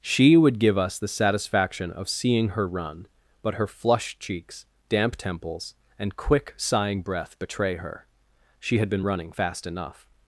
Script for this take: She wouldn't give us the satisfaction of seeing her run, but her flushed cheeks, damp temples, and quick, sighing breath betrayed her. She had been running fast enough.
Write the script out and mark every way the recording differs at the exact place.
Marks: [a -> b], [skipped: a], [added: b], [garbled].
She [wouldn't -> would] give us the satisfaction of seeing her run, but her flushed cheeks, damp temples, and quick, sighing breath [betrayed -> betray] her. She had been running fast enough.